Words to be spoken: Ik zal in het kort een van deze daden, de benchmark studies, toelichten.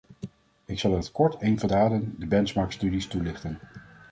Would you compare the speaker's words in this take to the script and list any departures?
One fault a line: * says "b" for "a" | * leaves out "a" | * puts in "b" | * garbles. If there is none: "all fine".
* leaves out "deze"